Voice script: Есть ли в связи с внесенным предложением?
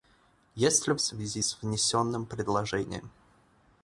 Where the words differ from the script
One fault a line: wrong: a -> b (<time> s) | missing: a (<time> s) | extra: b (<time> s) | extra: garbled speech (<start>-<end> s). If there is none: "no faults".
no faults